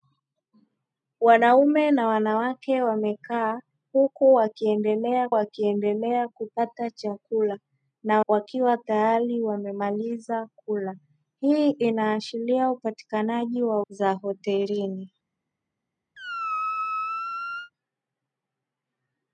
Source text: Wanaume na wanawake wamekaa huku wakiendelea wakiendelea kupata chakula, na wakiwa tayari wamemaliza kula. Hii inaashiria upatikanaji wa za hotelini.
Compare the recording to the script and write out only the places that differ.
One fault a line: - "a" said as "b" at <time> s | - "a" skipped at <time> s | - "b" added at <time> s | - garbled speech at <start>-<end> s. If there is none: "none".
none